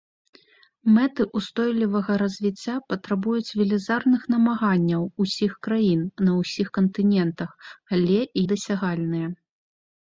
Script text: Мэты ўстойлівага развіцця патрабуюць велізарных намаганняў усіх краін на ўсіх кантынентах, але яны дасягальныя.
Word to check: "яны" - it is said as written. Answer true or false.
false